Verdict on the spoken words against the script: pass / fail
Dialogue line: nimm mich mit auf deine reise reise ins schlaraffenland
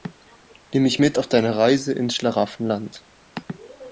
fail